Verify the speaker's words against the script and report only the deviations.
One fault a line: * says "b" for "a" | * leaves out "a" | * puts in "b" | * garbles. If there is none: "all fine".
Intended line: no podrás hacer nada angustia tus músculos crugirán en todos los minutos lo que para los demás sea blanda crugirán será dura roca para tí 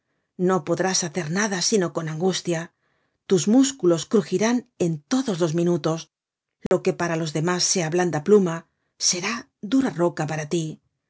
* puts in "sino con"
* says "pluma" for "crugirán"